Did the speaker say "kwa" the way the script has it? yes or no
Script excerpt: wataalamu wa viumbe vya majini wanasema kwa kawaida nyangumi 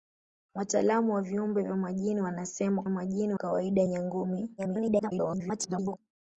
no